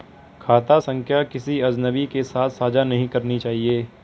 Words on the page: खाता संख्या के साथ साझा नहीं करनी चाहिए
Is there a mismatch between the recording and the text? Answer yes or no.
yes